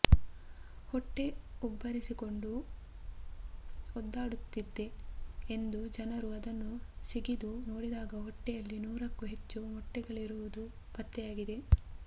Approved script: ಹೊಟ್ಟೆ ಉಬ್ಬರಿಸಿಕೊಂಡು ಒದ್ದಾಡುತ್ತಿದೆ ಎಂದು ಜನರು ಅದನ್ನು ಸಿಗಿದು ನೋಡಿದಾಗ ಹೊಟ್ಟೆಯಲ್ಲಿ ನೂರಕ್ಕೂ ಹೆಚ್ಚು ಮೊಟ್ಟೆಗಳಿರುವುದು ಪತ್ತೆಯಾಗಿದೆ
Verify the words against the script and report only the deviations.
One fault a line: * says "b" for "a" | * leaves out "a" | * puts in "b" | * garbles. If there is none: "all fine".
all fine